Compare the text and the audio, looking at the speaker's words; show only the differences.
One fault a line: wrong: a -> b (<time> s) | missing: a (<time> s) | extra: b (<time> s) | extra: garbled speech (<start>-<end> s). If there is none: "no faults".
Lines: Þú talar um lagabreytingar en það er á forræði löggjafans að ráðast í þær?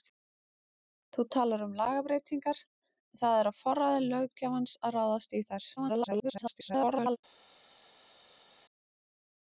extra: garbled speech (5.8-7.2 s)